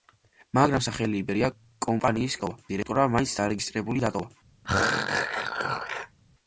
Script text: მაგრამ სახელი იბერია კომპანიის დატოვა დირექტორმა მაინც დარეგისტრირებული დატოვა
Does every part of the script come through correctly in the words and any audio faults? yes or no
no